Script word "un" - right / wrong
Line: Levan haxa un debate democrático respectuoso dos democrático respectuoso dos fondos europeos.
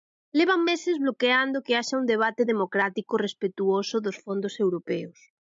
right